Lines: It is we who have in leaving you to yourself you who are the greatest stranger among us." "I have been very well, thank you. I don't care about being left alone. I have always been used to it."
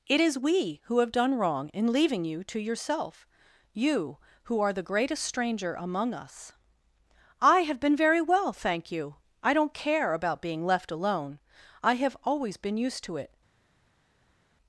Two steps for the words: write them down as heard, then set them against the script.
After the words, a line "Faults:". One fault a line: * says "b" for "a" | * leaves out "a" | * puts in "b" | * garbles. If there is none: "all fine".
It is we who have done wrong in leaving you to yourself you who are the greatest stranger among us." "I have been very well, thank you. I don't care about being left alone. I have always been used to it."
Faults:
* puts in "done wrong"